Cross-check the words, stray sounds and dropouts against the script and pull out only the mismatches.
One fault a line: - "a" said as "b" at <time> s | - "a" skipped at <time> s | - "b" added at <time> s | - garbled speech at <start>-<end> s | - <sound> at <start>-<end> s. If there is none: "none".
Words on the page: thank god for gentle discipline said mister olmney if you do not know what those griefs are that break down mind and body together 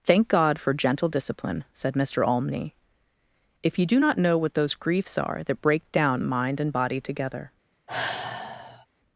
- sigh at 7.9-8.9 s